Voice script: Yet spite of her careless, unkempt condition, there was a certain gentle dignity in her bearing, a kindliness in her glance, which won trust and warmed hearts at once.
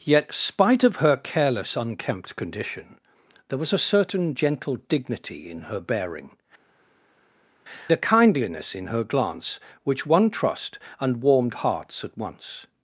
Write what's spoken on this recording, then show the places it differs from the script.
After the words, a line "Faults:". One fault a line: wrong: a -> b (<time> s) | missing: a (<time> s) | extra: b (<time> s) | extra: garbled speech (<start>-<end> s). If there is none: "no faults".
Yet spite of her careless, unkempt condition, there was a certain gentle dignity in her bearing, a kindliness in her glance, which won trust and warmed hearts at once.
Faults:
no faults